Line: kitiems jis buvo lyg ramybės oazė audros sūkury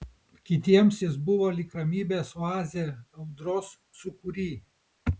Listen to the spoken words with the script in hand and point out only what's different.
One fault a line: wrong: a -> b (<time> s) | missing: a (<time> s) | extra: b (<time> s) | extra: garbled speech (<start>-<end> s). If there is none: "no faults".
no faults